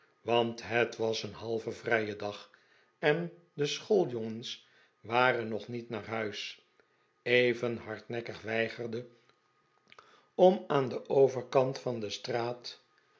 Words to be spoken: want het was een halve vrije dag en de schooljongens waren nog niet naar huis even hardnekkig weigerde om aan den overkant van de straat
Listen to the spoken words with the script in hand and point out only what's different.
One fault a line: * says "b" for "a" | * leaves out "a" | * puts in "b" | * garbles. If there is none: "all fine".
all fine